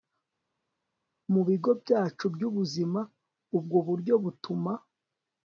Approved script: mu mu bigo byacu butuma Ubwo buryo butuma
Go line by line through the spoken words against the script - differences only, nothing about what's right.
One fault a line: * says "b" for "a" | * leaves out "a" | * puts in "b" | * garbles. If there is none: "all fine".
* leaves out "mu"
* says "byubuzima" for "butuma"